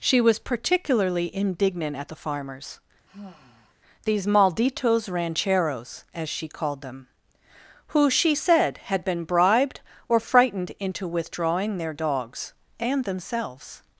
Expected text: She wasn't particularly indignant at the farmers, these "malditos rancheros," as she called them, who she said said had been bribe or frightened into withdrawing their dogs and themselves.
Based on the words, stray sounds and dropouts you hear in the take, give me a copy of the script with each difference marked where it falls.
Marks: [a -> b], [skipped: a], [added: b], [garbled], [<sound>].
She [wasn't -> was] particularly indignant at the farmers, [sigh] these "malditos rancheros," as she called them, who she said [skipped: said] had been [bribe -> bribed] or frightened into withdrawing their dogs and themselves.